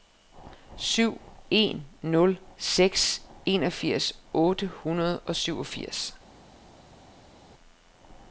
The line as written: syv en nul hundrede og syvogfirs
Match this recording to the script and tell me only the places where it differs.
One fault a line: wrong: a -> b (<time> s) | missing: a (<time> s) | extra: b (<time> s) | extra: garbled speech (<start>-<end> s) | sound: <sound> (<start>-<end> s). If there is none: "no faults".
extra: seks enogfirs otte (2.6 s)